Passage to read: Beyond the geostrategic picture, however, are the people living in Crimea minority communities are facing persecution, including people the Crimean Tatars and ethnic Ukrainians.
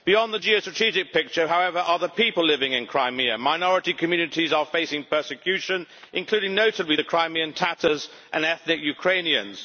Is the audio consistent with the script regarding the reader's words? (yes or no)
no